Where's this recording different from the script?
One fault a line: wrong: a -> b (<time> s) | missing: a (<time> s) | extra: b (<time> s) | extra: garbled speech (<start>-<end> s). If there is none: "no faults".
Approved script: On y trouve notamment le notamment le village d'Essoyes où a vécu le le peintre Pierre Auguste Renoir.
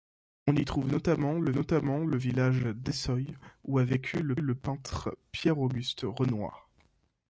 no faults